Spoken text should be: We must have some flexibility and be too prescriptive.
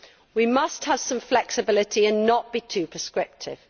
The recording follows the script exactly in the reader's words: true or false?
false